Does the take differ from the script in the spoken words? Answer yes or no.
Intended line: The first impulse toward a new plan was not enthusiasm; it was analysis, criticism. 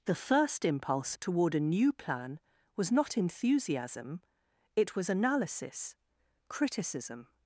no